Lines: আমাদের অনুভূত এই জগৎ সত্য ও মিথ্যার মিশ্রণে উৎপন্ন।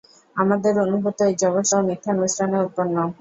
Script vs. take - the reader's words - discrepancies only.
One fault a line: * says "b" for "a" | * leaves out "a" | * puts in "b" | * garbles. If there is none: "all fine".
* leaves out "সত্য"